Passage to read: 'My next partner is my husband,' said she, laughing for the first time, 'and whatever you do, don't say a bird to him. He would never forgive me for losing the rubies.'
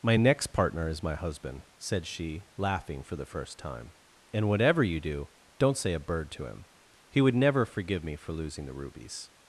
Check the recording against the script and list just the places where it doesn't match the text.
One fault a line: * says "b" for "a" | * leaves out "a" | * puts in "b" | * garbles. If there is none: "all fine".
all fine